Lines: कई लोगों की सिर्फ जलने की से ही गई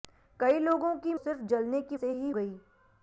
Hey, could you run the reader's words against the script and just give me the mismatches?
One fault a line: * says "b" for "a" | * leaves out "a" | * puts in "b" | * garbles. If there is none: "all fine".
all fine